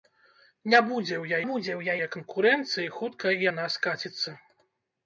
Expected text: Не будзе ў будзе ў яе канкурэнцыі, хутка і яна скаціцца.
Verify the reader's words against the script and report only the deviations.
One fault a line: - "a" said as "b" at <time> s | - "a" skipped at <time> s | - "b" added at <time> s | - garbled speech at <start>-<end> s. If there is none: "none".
none